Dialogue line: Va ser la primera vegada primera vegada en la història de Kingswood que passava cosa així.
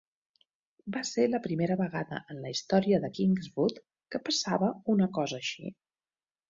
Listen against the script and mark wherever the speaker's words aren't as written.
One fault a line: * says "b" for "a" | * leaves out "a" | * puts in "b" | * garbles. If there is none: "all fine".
* leaves out "primera vegada"
* puts in "una"